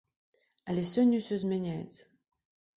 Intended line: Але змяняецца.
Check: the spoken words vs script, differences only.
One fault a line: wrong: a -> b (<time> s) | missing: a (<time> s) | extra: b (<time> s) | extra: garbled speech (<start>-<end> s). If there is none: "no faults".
extra: сёння ўсё (0.9 s)